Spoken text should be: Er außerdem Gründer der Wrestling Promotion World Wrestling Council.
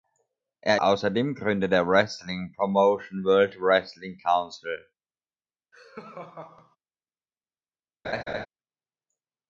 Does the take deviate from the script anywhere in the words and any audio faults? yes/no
yes